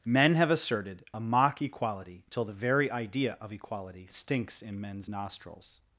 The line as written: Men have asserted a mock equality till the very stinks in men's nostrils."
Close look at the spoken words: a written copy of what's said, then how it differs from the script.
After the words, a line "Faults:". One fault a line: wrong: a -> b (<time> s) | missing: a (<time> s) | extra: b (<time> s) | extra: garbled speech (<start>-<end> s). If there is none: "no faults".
Men have asserted a mock equality till the very idea of equality stinks in men's nostrils."
Faults:
extra: idea of equality (2.9 s)